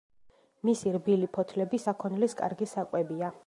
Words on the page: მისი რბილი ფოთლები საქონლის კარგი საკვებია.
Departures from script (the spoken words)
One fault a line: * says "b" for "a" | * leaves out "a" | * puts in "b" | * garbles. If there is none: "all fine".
all fine